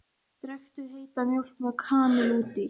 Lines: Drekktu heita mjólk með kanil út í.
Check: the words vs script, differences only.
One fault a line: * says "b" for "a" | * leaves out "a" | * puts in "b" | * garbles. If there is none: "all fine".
all fine